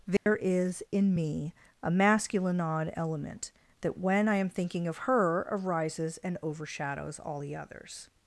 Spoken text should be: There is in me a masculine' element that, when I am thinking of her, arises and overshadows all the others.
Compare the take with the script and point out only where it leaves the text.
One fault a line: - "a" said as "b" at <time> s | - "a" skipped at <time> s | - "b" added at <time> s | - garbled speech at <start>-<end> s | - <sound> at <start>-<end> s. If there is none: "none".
- dropout at 0.2-0.3 s
- "odd" added at 2.6 s